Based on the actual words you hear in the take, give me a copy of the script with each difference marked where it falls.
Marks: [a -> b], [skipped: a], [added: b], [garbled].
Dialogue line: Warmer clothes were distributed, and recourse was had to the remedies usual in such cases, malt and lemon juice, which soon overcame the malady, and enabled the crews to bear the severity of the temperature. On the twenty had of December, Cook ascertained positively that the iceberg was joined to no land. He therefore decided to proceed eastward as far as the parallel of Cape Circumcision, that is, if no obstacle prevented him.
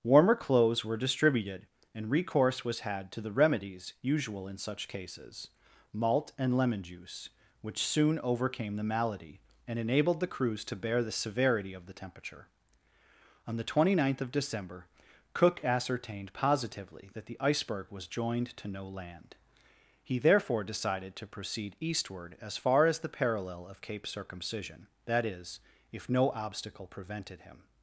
Warmer clothes were distributed, and recourse was had to the remedies usual in such cases, malt and lemon juice, which soon overcame the malady, and enabled the crews to bear the severity of the temperature. On the twenty [had -> ninth] of December, Cook ascertained positively that the iceberg was joined to no land. He therefore decided to proceed eastward as far as the parallel of Cape Circumcision, that is, if no obstacle prevented him.